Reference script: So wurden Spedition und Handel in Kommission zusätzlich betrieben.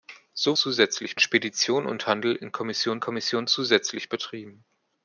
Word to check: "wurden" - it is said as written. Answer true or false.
false